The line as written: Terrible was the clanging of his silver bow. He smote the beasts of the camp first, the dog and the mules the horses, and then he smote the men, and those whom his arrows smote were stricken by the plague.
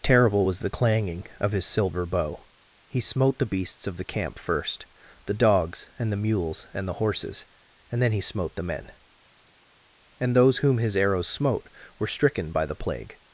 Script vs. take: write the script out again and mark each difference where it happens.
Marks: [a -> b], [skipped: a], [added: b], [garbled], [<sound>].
Terrible was the clanging of his silver bow. He smote the beasts of the camp first, the [dog -> dogs] and the mules [added: and] the horses, and then he smote the men, and those whom his arrows smote were stricken by the plague.